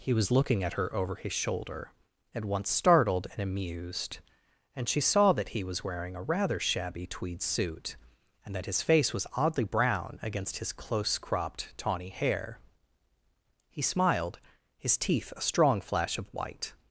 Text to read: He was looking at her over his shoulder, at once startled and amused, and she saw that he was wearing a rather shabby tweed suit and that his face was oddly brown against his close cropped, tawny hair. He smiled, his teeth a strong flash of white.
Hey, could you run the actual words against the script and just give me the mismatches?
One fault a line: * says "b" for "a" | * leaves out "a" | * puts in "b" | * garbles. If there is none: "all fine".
all fine